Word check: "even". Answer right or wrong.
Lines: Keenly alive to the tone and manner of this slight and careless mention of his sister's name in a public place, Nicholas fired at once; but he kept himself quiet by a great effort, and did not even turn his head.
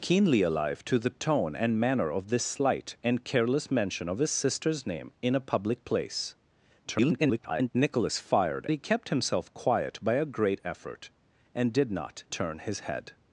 wrong